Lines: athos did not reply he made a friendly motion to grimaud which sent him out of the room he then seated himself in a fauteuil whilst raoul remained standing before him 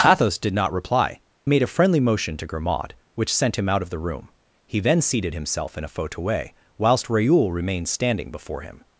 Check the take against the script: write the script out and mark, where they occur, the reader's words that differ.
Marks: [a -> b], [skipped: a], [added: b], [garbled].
athos did not reply [skipped: he] made a friendly motion to grimaud which sent him out of the room he then seated himself in a fauteuil whilst raoul remained standing before him